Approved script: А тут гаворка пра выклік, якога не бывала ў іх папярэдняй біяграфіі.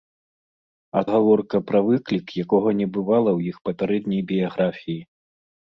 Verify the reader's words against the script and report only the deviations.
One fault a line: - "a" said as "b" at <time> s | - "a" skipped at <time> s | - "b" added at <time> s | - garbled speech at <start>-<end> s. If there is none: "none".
- "тут" skipped at 1.0 s